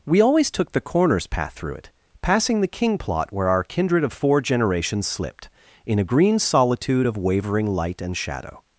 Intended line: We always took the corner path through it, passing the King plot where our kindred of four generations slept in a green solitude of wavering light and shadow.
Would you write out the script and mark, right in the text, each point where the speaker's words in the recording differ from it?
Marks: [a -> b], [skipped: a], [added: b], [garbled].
We always took the [corner -> corners] path through it, passing the King plot where our kindred of four generations [slept -> slipped] in a green solitude of wavering light and shadow.